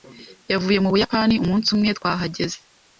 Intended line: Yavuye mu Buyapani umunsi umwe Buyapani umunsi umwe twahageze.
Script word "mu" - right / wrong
right